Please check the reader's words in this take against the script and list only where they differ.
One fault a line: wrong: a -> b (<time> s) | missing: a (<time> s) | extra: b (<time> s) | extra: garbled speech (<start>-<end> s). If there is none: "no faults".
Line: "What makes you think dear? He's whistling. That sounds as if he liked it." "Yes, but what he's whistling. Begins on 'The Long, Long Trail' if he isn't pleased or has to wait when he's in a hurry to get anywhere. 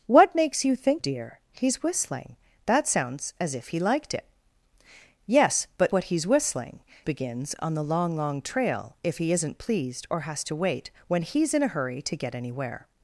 no faults